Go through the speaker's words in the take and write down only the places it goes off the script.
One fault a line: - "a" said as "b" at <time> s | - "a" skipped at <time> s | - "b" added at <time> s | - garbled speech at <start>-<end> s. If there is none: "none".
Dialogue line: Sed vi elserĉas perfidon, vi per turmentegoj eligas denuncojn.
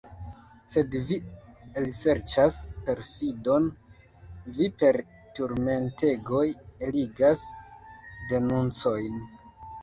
none